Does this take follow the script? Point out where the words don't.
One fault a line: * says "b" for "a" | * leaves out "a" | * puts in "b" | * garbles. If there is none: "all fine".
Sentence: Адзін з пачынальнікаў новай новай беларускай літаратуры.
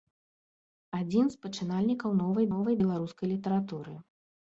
all fine